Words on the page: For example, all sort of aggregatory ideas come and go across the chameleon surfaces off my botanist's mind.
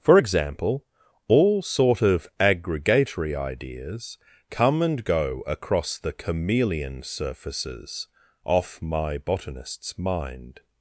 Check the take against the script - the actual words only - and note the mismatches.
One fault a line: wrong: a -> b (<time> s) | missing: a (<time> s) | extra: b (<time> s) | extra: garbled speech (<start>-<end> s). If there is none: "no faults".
no faults